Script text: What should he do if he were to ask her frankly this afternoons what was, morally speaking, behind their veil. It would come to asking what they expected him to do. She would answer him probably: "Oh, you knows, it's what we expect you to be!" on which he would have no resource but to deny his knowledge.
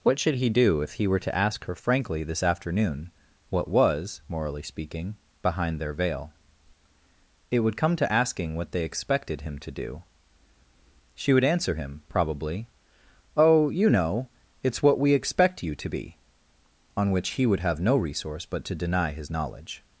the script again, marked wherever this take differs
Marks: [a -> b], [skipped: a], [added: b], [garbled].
What should he do if he were to ask her frankly this [afternoons -> afternoon] what was, morally speaking, behind their veil. It would come to asking what they expected him to do. She would answer him probably: "Oh, you [knows, -> know] it's what we expect you to be!" on which he would have no resource but to deny his knowledge.